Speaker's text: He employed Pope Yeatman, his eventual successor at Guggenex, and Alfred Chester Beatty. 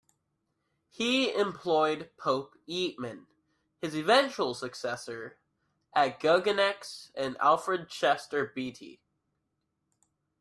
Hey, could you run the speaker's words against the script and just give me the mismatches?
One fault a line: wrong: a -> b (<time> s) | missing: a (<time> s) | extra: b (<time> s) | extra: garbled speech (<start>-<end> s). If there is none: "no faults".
no faults